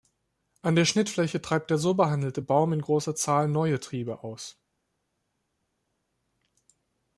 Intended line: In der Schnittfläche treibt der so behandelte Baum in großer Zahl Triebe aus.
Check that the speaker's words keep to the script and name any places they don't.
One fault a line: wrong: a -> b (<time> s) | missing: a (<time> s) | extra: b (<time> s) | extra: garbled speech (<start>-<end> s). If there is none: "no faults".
wrong: In -> An (0.6 s)
extra: neue (3.5 s)